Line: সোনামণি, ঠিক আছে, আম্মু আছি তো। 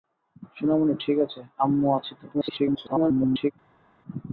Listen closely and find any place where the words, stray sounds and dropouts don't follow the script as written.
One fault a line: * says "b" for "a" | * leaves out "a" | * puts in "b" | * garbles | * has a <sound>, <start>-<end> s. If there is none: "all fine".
* garbles